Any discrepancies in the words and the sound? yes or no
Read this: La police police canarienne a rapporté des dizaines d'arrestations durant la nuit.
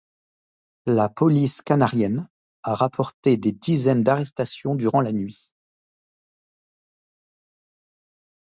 yes